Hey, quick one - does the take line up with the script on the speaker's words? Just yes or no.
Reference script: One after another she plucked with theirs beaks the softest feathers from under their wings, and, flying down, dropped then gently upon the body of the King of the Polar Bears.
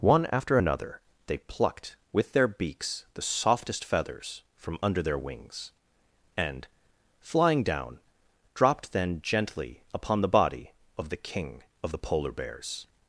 no